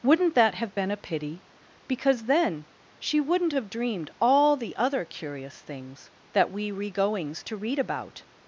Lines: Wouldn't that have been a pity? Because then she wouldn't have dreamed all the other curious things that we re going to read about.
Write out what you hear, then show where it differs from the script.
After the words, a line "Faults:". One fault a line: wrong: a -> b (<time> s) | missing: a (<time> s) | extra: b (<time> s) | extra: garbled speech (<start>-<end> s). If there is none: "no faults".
Wouldn't that have been a pity? Because then she wouldn't have dreamed all the other curious things that we re goings to read about.
Faults:
wrong: going -> goings (6.9 s)